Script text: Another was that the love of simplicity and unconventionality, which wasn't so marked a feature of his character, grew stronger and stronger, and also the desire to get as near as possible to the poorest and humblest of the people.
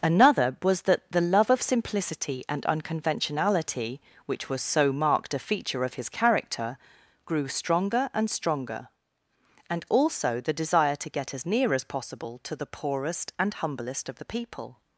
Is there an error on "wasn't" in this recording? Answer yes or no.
yes